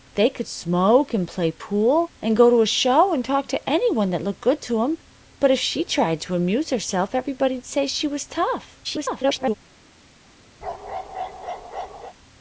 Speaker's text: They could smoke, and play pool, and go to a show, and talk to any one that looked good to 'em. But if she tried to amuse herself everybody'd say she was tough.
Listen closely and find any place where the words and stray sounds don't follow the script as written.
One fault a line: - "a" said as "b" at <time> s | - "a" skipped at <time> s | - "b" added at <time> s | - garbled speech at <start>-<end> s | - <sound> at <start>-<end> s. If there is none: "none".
- garbled speech at 8.8-9.5 s
- bark at 10.6-12.1 s